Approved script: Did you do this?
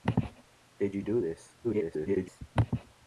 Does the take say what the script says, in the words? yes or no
no